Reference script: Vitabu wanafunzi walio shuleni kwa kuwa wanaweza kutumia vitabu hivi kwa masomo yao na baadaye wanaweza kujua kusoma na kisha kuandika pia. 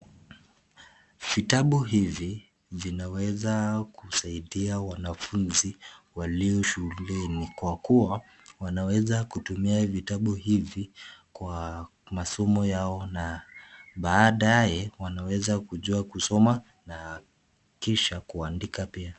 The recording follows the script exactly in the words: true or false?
false